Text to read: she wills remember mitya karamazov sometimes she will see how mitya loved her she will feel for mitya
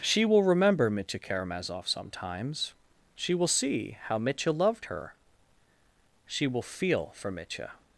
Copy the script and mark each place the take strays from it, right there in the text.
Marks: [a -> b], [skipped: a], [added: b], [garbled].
she [wills -> will] remember mitya karamazov sometimes she will see how mitya loved her she will feel for mitya